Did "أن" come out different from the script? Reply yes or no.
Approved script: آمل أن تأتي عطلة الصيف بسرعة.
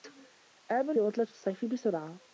yes